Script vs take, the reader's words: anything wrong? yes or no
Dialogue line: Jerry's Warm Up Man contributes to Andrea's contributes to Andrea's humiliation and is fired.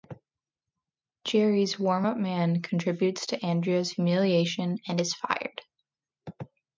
yes